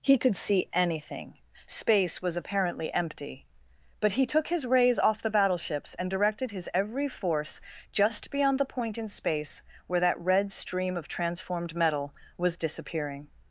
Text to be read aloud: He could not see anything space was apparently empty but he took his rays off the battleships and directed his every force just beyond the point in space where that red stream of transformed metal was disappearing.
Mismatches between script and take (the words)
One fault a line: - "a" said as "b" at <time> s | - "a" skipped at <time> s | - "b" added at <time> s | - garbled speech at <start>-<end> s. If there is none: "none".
- "not" skipped at 0.3 s